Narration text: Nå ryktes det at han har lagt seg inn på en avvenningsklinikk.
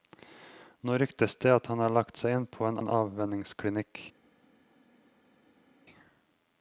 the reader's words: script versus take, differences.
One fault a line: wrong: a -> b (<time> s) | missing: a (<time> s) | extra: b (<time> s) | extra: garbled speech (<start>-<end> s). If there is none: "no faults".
extra: en (2.8 s)